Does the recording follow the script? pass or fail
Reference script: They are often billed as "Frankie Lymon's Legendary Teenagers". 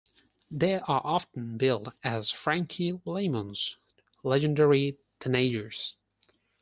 pass